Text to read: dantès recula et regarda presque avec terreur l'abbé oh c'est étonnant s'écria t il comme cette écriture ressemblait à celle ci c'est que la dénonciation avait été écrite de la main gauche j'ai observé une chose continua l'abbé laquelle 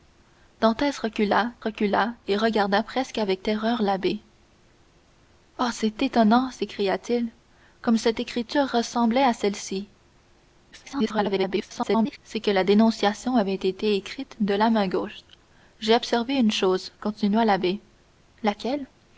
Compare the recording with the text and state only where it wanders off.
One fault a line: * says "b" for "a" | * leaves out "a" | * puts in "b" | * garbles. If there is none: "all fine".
* puts in "recula"
* garbles